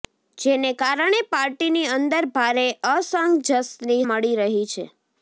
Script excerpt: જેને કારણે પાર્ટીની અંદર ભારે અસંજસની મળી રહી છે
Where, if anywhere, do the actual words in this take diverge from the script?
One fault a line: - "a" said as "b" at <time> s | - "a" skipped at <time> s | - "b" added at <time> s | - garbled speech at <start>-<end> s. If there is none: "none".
none